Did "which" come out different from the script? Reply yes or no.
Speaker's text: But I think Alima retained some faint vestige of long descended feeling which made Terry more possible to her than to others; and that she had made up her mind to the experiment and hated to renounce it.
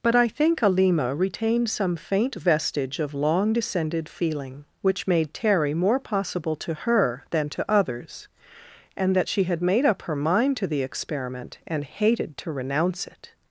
no